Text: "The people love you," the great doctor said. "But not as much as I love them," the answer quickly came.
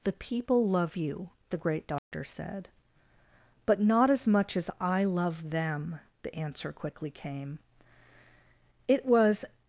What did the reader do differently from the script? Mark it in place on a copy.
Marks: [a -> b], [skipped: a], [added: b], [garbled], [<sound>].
"The people love you," the great doctor [dropout] said. "But not as much as I love them," the answer quickly came. [added: It was]